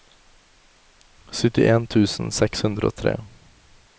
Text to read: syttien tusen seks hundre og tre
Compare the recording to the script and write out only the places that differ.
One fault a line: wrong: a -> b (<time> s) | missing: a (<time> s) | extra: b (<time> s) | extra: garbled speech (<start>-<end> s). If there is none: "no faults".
no faults